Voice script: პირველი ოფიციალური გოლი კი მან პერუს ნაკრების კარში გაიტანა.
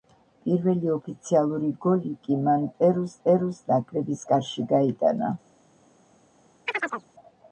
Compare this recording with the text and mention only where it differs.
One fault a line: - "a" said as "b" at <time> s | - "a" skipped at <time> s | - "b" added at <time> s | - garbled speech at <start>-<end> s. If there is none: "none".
- "პერუს" added at 3.2 s